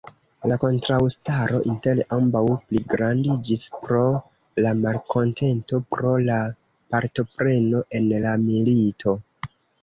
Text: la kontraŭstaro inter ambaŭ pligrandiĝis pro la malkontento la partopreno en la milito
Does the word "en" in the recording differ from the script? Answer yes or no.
no